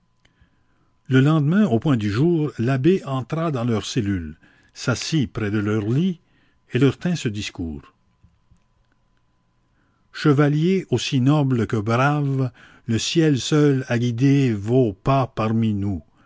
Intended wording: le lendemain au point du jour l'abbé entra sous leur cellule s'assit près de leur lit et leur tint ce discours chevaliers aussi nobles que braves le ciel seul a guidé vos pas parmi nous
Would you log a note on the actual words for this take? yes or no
yes